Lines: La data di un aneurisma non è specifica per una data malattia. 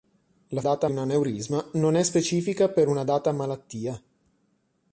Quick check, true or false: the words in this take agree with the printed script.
true